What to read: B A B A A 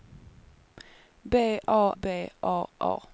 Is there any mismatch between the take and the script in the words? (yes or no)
no